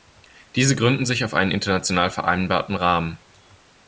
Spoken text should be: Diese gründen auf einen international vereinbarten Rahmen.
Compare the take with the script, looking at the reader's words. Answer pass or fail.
fail